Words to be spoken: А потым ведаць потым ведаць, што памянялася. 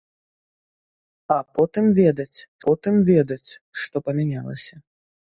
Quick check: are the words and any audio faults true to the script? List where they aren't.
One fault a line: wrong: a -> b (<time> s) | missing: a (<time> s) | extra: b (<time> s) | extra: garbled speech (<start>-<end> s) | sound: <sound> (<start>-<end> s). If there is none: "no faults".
no faults